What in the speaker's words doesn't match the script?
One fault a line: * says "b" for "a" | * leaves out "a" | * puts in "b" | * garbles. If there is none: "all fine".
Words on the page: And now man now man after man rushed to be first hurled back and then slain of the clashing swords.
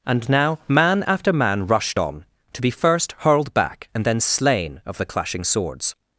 * leaves out "now man"
* puts in "on"